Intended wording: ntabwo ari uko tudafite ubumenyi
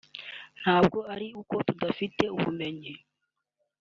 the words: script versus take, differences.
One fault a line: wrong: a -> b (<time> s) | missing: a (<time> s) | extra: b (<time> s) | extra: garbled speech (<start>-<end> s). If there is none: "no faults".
no faults